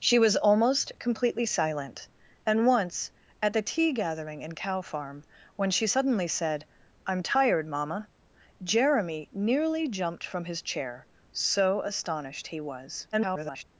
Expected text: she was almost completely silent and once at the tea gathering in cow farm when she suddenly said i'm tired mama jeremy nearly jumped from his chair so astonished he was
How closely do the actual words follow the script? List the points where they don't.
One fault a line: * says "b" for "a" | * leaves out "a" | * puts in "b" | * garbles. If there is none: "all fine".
* garbles